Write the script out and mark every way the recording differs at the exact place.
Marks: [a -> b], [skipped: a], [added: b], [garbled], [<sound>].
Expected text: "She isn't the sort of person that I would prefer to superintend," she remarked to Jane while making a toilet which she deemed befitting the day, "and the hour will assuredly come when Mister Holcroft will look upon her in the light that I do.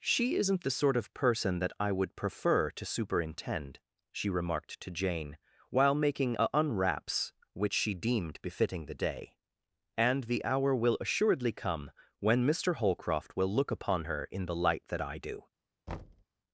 "She isn't the sort of person that I would prefer to superintend," she remarked to Jane while making a [toilet -> unwraps] which she deemed befitting the day, "and the hour will assuredly come when Mister Holcroft will look upon her in the light that I do. [thud]